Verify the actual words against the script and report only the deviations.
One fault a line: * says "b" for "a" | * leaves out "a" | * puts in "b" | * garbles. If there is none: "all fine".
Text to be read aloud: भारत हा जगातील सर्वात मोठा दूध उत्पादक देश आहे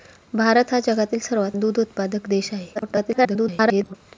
* leaves out "मोठा"
* garbles